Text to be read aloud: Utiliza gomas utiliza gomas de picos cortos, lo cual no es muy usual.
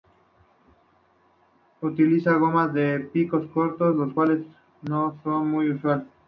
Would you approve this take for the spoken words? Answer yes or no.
no